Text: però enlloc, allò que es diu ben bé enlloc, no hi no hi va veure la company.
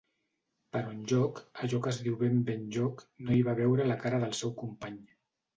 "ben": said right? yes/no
yes